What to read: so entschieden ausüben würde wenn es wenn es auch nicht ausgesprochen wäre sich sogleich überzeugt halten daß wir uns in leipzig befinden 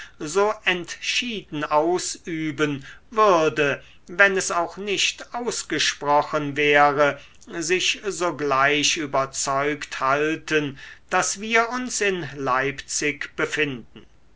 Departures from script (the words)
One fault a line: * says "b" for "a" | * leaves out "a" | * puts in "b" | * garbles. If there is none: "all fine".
* leaves out "wenn es"